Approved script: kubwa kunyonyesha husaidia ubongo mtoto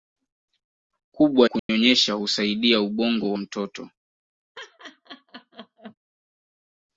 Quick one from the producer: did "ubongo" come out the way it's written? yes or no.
yes